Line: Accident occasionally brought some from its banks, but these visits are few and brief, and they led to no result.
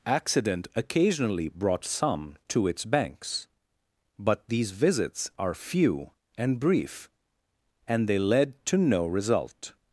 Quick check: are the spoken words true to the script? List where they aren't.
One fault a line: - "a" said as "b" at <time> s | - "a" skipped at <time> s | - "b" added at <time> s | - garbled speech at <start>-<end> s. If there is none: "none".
- "from" said as "to" at 2.5 s